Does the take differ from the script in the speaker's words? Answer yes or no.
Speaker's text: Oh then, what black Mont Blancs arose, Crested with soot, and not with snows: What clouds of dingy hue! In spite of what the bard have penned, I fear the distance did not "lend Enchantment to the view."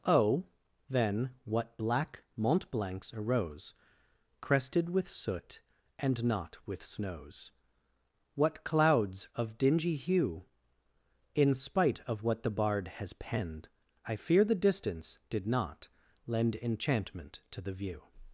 yes